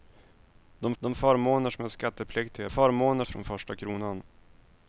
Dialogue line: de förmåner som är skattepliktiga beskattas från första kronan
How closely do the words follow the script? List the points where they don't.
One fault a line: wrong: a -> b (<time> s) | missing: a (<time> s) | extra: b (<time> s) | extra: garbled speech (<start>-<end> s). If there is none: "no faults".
extra: de (1.0 s)
wrong: beskattas -> förmåner (2.7 s)